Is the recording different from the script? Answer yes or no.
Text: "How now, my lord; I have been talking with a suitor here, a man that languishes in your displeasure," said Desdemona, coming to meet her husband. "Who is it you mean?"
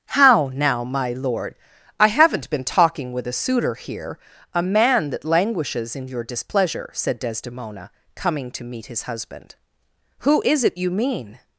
yes